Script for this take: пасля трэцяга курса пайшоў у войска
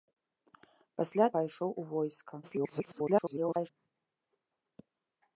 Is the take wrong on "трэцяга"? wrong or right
wrong